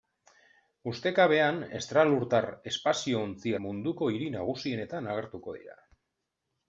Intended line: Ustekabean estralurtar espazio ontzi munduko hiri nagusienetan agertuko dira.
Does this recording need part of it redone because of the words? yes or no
no